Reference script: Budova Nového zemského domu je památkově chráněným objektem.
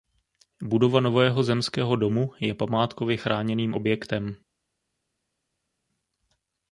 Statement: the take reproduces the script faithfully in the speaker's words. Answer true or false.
true